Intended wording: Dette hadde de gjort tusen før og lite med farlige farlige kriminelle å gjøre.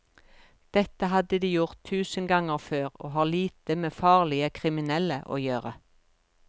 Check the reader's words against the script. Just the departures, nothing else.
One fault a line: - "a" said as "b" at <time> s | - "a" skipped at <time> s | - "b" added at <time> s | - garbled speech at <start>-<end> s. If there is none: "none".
- "ganger" added at 2.3 s
- "har" added at 3.2 s
- "farlige" skipped at 4.5 s